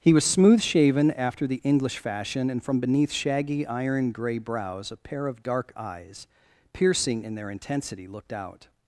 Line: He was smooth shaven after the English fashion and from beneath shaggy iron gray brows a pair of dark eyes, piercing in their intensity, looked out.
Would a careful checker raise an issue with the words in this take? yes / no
no